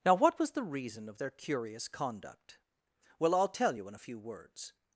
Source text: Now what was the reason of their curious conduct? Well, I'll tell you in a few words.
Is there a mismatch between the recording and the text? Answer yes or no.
no